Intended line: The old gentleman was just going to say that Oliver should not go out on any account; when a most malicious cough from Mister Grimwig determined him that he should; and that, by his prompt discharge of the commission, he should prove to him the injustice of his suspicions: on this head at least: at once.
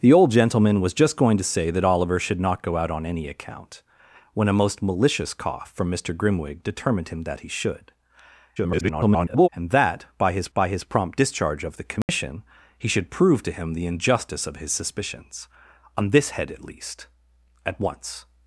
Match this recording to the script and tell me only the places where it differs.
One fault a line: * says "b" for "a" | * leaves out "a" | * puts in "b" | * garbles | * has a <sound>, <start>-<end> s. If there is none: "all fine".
* garbles
* puts in "by his"
* has a dropout, 12.0-12.1 s